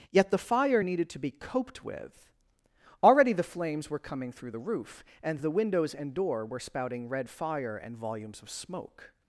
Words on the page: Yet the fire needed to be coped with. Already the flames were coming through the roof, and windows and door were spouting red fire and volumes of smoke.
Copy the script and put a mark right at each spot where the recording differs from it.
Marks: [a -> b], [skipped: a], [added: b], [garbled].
Yet the fire needed to be coped with. Already the flames were coming through the roof, and [added: the] windows and door were spouting red fire and volumes of smoke.